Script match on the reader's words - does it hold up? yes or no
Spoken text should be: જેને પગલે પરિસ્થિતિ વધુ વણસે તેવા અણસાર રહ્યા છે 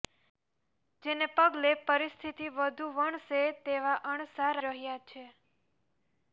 yes